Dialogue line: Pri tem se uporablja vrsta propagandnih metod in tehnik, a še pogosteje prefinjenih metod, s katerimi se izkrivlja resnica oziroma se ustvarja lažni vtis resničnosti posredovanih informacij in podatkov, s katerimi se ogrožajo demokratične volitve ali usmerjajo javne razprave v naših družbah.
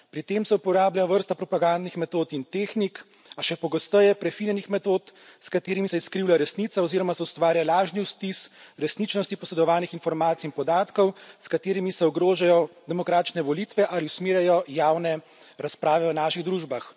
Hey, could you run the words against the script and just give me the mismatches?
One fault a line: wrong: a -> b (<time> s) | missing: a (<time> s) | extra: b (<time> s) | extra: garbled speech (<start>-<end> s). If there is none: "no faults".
no faults